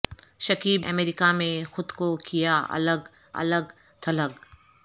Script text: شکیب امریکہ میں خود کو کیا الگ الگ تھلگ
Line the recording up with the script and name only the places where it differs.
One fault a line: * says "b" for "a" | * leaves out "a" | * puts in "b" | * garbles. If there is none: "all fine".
all fine